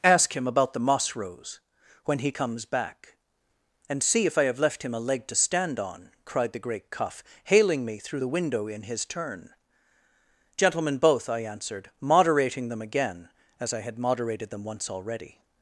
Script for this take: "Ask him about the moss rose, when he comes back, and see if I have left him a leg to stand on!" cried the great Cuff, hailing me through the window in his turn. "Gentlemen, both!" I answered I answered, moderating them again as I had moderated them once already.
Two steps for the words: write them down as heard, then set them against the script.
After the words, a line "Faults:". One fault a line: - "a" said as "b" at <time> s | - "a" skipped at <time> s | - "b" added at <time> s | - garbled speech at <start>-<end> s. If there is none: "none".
"Ask him about the moss rose, when he comes back, and see if I have left him a leg to stand on!" cried the great Cuff, hailing me through the window in his turn. "Gentlemen, both!" I answered, moderating them again as I had moderated them once already.
Faults:
- "I answered" skipped at 11.9 s